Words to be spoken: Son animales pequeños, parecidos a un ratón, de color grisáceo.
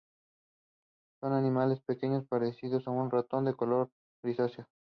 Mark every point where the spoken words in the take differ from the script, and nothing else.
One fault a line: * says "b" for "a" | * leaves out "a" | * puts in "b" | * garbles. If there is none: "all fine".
all fine